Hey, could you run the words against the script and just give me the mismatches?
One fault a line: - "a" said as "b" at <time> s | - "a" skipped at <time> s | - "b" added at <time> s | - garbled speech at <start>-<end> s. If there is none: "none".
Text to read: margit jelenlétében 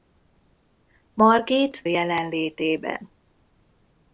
none